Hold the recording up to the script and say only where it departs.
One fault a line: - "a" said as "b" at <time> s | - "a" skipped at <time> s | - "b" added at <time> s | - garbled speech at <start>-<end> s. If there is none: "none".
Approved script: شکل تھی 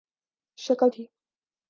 none